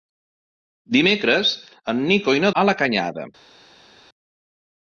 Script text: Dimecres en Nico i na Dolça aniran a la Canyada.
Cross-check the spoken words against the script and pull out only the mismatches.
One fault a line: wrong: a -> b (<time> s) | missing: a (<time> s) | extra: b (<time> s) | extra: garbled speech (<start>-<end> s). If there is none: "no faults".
missing: Dolça aniran (2.5 s)